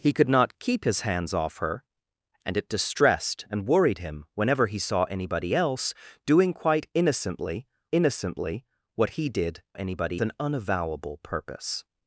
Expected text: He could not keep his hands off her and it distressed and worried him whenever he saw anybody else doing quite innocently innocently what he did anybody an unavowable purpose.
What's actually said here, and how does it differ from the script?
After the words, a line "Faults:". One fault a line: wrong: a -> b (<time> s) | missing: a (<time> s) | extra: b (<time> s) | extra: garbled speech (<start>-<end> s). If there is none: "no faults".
He could not keep his hands off her and it distressed and worried him whenever he saw anybody else doing quite innocently innocently what he did anybody an unavowable purpose.
Faults:
no faults